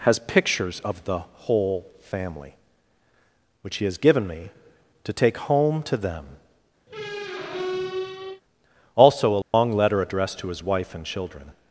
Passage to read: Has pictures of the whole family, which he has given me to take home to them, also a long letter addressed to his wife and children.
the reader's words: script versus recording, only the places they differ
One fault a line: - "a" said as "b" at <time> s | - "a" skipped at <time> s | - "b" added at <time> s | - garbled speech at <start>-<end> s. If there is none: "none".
none